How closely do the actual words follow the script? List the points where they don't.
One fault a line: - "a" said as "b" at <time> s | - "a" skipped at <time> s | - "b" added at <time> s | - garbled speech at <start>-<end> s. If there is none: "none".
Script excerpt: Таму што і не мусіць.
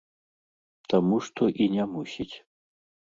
none